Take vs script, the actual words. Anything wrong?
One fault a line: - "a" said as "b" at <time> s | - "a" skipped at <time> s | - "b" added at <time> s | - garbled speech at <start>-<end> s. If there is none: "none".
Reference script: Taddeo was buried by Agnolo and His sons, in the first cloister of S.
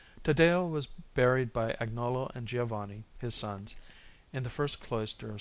- "Giovanni" added at 2.5 s